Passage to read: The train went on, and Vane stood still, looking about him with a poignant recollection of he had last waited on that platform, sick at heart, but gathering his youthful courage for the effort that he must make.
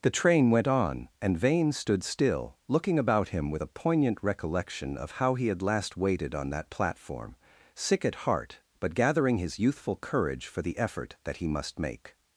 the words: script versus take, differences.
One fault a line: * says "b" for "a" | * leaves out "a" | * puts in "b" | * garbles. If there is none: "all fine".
* puts in "how"